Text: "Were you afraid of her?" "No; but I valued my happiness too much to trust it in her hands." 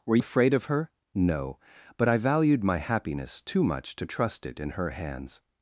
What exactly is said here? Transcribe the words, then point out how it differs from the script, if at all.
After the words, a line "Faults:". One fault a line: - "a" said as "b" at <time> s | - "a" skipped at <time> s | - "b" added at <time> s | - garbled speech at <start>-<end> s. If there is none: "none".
"Were afraid of her?" "No; but I valued my happiness too much to trust it in her hands."
Faults:
- "you" skipped at 0.2 s